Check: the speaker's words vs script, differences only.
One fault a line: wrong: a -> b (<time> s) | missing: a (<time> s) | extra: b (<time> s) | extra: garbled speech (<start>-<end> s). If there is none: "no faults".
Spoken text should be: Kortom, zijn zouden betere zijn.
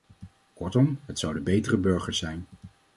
wrong: zijn -> het (1.1 s)
extra: burgers (1.8 s)